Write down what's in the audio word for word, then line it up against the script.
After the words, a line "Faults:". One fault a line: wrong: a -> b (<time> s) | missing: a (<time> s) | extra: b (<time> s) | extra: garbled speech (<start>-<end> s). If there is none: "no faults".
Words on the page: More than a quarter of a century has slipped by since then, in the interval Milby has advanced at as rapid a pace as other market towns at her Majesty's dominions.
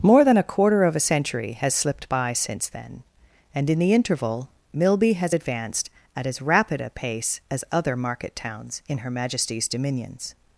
More than a quarter of a century has slipped by since then, and in the interval Milby has advanced at as rapid a pace as other market towns in her Majesty's dominions.
Faults:
extra: and (3.5 s)
wrong: at -> in (8.9 s)